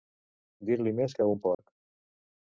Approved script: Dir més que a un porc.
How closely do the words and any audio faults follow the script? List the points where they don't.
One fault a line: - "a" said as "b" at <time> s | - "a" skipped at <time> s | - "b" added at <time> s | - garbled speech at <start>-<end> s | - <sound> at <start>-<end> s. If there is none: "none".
- "li" added at 0.8 s
- dropout at 1.5-1.6 s